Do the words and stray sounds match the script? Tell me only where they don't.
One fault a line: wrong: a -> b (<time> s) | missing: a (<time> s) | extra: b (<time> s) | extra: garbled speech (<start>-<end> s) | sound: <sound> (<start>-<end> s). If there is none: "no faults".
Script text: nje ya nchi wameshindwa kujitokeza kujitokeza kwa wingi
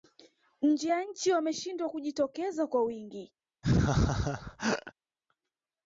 missing: kujitokeza (2.7 s)
sound: laugh (3.6-4.9 s)